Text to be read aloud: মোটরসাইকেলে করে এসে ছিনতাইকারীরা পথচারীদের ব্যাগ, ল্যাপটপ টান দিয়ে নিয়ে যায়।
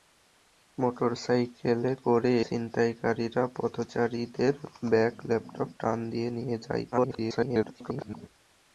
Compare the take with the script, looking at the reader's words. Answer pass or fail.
fail